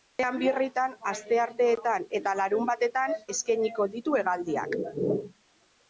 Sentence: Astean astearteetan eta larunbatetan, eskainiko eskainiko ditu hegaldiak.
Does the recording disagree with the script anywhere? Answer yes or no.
yes